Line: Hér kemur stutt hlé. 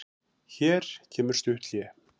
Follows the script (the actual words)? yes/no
yes